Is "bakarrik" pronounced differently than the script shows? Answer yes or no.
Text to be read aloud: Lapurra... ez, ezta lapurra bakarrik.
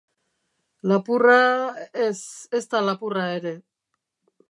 yes